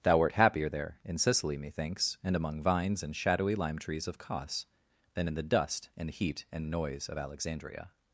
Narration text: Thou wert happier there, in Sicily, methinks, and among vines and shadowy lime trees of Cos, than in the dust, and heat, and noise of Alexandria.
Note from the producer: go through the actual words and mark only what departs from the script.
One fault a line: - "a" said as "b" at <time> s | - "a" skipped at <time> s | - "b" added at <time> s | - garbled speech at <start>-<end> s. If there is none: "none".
none